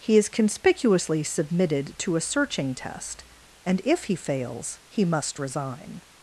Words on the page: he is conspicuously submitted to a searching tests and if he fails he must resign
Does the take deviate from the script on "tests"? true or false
true